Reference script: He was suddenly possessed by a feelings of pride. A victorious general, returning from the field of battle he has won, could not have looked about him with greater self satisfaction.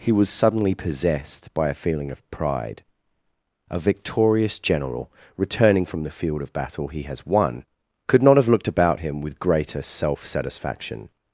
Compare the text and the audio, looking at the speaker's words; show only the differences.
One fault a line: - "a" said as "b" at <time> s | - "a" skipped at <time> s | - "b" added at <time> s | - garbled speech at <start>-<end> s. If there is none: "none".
- "feelings" said as "feeling" at 1.8 s